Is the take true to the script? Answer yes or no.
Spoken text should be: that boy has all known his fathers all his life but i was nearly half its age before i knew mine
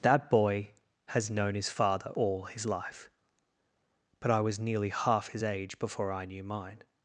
no